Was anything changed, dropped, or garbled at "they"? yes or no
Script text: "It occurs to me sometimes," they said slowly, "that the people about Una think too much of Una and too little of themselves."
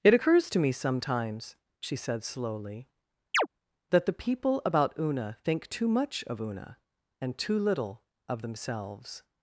yes